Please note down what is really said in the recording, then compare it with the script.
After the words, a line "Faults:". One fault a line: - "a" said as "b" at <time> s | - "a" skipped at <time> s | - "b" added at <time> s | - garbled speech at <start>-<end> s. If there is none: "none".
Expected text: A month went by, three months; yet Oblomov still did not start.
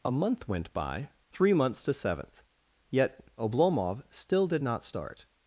A month went by, three months; to seventh yet Oblomov still did not start.
Faults:
- "to seventh" added at 1.8 s